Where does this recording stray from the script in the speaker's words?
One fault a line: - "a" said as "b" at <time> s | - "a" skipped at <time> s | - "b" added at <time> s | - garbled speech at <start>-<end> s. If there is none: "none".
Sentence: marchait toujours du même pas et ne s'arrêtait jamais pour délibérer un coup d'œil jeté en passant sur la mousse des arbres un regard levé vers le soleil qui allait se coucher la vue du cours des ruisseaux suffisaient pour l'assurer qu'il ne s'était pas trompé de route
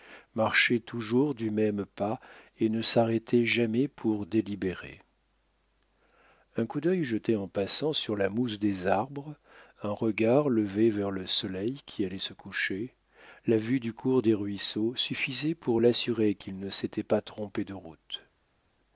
none